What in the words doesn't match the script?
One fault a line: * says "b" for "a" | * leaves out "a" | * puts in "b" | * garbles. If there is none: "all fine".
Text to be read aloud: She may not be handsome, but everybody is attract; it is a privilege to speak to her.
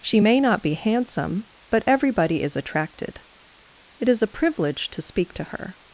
* says "attracted" for "attract"